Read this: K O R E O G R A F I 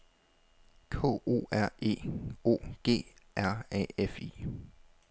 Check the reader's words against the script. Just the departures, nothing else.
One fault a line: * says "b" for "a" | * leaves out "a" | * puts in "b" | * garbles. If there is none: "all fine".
all fine